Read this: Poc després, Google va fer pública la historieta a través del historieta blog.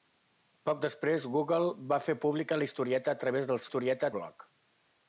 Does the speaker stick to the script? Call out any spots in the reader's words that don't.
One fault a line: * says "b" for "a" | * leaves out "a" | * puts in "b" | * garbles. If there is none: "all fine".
all fine